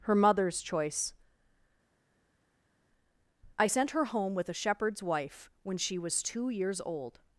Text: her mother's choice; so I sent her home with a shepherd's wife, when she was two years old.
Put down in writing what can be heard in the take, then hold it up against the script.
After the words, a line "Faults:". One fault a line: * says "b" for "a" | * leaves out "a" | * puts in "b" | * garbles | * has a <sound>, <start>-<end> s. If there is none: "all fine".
her mother's choice; I sent her home with a shepherd's wife, when she was two years old.
Faults:
* leaves out "so"